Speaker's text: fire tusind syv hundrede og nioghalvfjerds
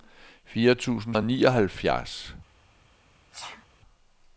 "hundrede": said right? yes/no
no